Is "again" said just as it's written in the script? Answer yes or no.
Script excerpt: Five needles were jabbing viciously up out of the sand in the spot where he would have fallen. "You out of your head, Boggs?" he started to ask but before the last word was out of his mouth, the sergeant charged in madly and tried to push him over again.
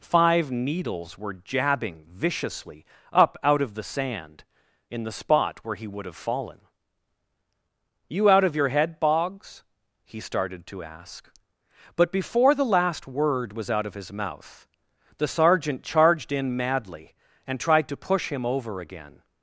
yes